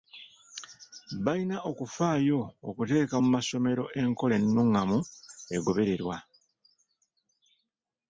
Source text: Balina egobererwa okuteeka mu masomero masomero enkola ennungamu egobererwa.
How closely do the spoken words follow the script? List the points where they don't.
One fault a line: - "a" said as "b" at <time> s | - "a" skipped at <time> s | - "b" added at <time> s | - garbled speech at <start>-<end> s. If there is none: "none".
- "egobererwa" said as "okufaayo" at 1.7 s
- "masomero" skipped at 3.8 s